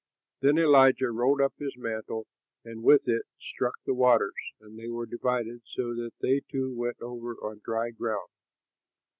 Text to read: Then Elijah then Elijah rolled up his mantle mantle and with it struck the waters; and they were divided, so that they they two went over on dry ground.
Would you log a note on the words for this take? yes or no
yes